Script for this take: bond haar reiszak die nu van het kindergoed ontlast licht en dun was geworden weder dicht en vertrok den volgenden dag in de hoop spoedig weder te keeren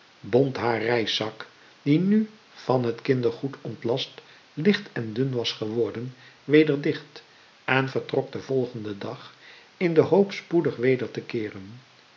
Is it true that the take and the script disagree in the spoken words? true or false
false